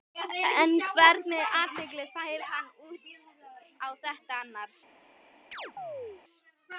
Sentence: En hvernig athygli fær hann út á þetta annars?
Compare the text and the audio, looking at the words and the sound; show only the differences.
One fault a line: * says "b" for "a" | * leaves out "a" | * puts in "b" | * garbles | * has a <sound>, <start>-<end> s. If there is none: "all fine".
* has a chirp, 5.5-6.2 s